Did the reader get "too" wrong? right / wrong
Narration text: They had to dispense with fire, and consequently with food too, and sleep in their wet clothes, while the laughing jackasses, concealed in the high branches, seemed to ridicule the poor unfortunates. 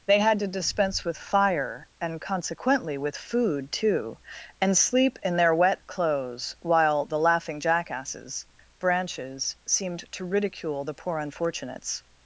right